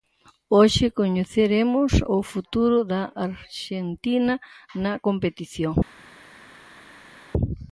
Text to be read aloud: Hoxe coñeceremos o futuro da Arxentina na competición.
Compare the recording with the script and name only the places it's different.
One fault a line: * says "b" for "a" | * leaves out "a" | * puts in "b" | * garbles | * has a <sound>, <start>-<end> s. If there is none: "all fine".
all fine